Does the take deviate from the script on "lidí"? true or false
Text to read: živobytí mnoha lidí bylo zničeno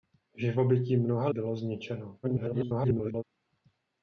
true